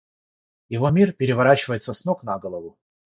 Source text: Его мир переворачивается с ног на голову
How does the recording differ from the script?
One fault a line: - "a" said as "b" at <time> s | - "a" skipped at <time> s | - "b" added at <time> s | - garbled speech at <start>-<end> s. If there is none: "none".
none